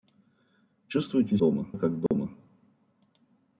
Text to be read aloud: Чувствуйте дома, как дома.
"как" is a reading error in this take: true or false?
false